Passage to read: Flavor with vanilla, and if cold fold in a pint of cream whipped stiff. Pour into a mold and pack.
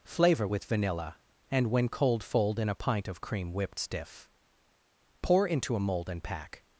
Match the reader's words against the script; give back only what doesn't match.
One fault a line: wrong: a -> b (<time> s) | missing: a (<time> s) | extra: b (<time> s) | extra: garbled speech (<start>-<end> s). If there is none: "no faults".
wrong: if -> when (1.7 s)